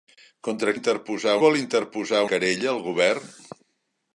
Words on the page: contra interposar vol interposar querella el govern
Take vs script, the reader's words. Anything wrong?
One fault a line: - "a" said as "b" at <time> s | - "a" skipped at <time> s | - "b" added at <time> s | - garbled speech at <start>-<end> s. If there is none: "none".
none